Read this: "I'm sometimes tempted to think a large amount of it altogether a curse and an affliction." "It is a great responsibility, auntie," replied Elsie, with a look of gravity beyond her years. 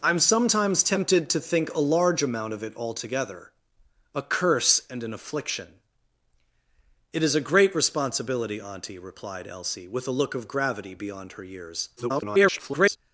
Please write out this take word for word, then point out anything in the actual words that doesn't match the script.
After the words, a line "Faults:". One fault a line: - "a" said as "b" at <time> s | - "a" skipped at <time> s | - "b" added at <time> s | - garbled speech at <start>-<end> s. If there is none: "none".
"I'm sometimes tempted to think a large amount of it altogether a curse and an affliction." "It is a great responsibility, auntie," replied Elsie, with a look of gravity beyond her years. [garbled]
Faults:
- garbled speech at 12.0-13.0 s